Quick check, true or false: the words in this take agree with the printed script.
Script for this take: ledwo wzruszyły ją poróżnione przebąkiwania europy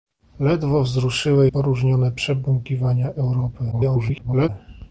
false